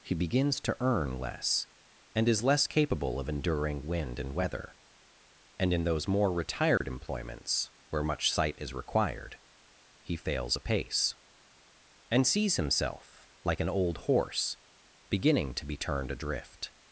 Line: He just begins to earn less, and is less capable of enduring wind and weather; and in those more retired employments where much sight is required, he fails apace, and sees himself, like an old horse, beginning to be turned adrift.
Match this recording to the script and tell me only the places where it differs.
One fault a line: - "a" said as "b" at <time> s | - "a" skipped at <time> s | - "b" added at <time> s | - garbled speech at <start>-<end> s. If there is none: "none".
- "just" skipped at 0.1 s